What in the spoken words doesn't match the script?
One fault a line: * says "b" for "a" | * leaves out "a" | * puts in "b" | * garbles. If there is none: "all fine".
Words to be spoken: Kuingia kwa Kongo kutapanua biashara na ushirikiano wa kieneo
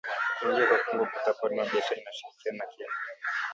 all fine